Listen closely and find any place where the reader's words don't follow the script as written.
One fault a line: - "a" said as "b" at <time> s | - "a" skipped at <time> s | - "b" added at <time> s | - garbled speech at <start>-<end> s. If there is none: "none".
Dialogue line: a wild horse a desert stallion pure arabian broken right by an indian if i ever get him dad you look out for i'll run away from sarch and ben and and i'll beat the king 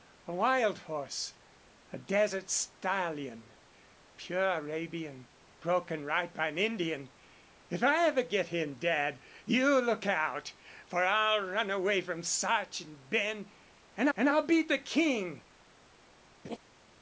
none